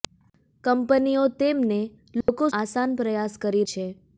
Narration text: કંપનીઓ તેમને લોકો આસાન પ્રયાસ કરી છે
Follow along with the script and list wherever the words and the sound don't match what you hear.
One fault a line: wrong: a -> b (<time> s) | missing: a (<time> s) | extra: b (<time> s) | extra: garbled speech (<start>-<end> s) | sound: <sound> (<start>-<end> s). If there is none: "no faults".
sound: dropout (2.2-2.3 s)